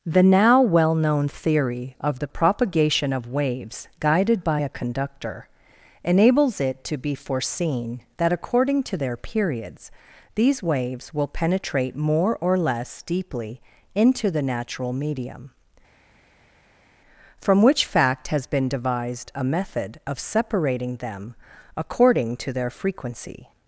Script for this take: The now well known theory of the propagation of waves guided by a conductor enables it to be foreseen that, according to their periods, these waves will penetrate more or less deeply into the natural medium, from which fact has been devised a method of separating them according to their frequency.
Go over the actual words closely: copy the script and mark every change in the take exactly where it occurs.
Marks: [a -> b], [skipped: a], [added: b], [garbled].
The now well known theory of the propagation of waves guided by a conductor enables it to be foreseen that, according to their periods, these waves will penetrate more or less deeply into the natural medium, from which fact has been devised a method of separating them according to their frequency.